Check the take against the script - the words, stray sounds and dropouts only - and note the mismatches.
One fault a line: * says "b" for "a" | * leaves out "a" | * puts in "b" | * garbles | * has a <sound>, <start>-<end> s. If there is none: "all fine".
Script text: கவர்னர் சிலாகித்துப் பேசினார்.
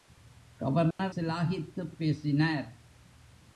* has a dropout, 0.9-1.0 s